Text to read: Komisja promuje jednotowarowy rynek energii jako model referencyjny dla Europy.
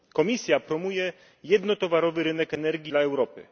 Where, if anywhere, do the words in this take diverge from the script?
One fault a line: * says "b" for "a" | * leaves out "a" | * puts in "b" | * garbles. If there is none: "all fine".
* leaves out "jako model referencyjny"